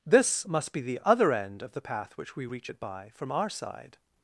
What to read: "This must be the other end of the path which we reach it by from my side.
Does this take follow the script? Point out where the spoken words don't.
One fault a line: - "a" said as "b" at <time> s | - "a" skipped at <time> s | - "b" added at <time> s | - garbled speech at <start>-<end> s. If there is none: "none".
- "my" said as "our" at 3.3 s